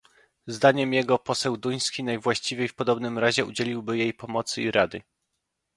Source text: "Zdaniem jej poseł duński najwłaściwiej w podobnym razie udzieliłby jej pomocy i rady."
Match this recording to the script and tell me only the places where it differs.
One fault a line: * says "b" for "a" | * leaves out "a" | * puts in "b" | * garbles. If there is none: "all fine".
* says "jego" for "jej"